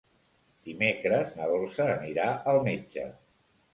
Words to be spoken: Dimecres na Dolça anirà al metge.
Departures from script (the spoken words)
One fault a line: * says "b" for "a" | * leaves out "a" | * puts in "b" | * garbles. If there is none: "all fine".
all fine